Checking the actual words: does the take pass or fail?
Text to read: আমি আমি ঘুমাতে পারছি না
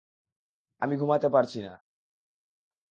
fail